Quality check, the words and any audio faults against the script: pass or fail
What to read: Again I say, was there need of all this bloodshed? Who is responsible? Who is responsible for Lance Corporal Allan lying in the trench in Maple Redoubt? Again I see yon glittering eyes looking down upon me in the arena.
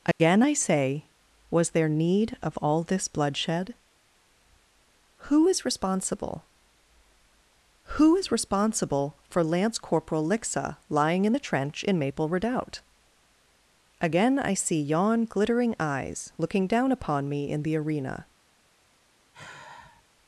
fail